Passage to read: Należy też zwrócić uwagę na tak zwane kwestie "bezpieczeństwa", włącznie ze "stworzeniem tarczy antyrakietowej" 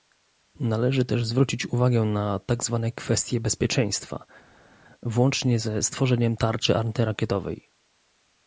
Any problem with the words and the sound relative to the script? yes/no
no